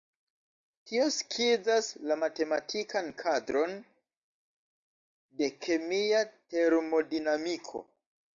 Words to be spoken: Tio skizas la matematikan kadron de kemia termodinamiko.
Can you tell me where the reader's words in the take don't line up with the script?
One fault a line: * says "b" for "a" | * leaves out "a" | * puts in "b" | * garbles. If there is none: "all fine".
all fine